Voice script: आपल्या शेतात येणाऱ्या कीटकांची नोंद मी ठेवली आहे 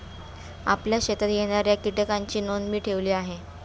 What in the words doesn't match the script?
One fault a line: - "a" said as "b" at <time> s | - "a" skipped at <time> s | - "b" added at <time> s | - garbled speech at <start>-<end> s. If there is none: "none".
none